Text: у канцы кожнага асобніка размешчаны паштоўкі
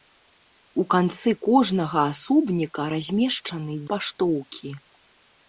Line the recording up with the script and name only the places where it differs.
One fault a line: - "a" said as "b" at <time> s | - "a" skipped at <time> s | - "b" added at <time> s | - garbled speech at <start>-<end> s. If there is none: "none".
none